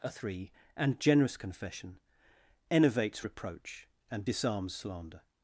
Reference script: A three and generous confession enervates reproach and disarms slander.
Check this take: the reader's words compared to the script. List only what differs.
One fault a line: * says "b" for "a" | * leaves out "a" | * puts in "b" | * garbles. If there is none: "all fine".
all fine